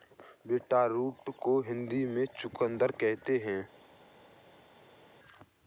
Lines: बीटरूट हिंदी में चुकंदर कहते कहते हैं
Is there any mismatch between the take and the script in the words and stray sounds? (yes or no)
yes